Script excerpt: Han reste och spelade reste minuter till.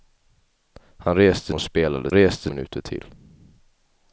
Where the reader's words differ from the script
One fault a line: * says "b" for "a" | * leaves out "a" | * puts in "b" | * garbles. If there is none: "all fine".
all fine